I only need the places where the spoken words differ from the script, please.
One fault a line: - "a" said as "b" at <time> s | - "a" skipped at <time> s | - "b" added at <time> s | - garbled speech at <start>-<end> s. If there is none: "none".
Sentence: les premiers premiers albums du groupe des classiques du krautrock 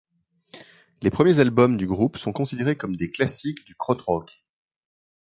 - "premiers" skipped at 1.4 s
- "sont considérés comme" added at 2.2 s